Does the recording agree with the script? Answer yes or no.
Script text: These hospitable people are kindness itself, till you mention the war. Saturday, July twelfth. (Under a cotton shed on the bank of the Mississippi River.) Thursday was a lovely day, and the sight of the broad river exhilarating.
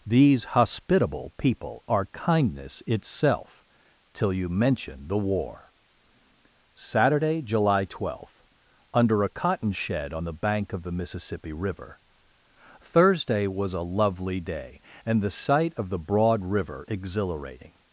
yes